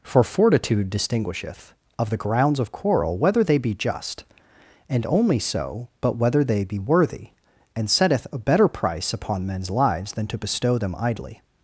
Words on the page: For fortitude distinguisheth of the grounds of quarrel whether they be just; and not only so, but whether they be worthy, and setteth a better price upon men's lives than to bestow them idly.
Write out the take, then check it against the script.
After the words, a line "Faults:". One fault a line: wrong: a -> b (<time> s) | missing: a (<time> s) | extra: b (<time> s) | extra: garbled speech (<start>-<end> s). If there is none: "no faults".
For fortitude distinguisheth of the grounds of quarrel whether they be just; and only so, but whether they be worthy, and setteth a better price upon men's lives than to bestow them idly.
Faults:
missing: not (5.0 s)